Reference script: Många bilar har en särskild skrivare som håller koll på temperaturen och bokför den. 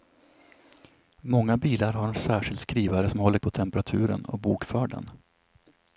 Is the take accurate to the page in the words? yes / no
no